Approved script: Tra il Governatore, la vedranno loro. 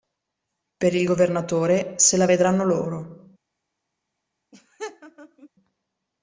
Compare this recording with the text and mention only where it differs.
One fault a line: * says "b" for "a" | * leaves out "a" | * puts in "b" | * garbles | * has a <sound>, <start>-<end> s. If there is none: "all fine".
* says "Per" for "Tra"
* puts in "se"
* has a laugh, 4.5-5.5 s